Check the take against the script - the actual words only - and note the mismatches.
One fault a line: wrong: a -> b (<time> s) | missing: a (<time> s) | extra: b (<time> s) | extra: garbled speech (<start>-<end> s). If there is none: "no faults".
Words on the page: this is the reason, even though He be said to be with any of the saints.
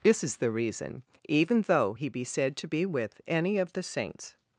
no faults